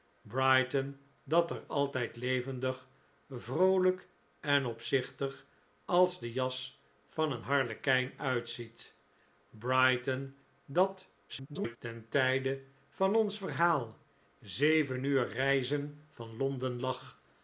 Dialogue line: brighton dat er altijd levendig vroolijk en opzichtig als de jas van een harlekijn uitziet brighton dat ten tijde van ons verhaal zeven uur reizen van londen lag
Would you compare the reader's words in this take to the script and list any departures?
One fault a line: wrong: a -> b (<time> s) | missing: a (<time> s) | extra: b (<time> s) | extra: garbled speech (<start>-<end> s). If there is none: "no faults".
extra: garbled speech (11.3-11.8 s)